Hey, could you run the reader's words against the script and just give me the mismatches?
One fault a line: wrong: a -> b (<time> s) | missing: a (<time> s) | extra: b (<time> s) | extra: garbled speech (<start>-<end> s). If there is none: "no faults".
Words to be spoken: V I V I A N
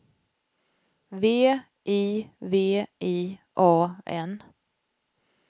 no faults